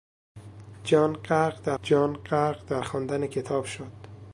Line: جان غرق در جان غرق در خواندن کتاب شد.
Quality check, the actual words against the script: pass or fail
pass